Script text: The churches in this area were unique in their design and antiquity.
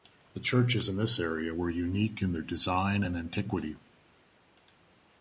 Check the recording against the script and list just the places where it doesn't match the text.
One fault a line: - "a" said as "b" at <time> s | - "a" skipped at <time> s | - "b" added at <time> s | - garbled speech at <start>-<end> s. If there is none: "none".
none